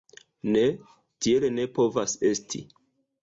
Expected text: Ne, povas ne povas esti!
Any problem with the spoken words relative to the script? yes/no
yes